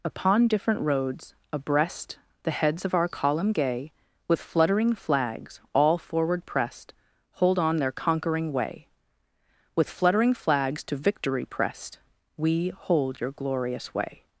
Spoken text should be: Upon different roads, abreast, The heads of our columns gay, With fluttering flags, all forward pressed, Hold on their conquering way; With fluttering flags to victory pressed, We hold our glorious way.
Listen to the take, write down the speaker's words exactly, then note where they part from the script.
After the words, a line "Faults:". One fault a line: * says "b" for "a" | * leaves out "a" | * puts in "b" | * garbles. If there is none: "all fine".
Upon different roads, abreast, The heads of our column gay, With fluttering flags, all forward pressed, Hold on their conquering way; With fluttering flags to victory pressed, We hold your glorious way.
Faults:
* says "column" for "columns"
* says "your" for "our"